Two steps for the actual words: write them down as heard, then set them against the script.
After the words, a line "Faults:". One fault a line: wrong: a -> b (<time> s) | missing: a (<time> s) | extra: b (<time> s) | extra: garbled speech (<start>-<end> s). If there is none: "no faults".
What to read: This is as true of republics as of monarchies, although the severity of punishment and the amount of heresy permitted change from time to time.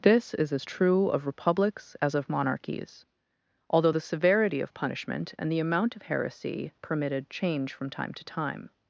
This is as true of republics as of monarchies, although the severity of punishment and the amount of heresy permitted change from time to time.
Faults:
no faults